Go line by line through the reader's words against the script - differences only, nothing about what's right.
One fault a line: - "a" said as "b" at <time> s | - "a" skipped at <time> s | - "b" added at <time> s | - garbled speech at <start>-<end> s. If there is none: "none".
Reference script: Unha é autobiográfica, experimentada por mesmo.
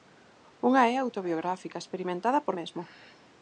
none